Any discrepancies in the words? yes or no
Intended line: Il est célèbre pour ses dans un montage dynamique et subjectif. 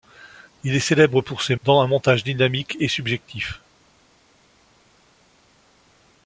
no